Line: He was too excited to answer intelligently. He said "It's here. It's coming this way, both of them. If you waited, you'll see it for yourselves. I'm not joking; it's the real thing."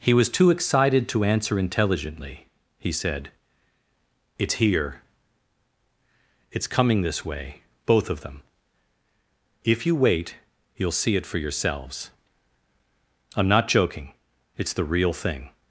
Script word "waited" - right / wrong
wrong